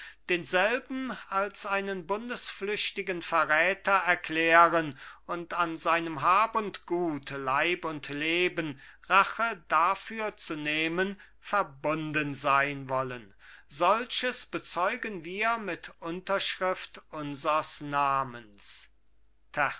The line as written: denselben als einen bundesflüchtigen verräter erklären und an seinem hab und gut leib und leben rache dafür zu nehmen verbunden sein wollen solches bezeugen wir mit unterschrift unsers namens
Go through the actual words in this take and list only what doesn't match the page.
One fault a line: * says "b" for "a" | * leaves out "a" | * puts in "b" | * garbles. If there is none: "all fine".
all fine